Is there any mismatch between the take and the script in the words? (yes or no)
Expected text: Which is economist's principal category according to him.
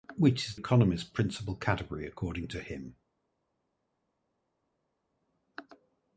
no